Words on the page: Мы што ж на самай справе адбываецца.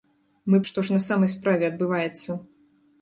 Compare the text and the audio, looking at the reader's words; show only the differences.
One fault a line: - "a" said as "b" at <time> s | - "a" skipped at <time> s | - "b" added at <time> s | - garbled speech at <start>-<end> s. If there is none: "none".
none